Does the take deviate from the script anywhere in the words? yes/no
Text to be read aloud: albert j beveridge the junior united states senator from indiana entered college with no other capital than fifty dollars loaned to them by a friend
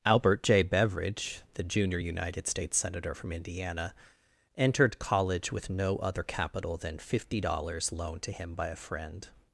yes